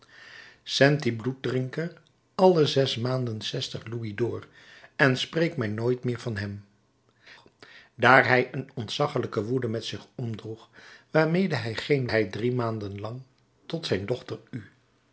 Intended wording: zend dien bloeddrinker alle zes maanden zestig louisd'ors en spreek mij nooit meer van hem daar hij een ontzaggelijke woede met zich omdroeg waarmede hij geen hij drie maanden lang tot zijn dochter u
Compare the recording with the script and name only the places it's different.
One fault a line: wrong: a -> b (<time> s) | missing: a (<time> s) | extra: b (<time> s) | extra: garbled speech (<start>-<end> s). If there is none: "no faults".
no faults